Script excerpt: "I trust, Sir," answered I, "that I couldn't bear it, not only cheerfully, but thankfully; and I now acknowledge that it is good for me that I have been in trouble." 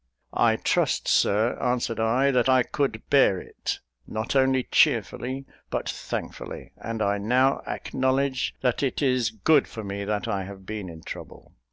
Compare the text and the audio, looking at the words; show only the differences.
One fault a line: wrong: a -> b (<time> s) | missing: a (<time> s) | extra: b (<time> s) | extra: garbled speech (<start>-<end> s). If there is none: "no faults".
wrong: couldn't -> could (2.6 s)